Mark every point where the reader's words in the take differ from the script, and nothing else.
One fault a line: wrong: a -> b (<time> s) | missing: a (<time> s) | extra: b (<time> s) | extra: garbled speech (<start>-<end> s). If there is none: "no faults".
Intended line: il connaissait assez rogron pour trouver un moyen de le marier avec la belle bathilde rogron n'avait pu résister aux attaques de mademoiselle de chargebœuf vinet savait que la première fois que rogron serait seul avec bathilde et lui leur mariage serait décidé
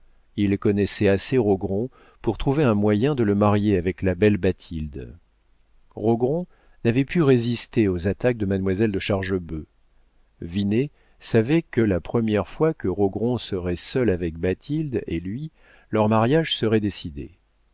no faults